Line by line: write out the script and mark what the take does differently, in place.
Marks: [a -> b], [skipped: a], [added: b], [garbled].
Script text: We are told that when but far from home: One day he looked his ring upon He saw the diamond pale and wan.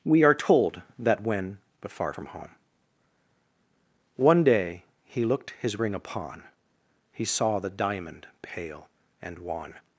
We are told that when but far from home: One day he looked his ring upon He saw the diamond pale and wan.